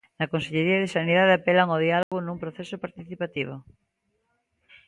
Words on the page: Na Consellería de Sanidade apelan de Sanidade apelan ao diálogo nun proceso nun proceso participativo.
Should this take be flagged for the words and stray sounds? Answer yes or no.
yes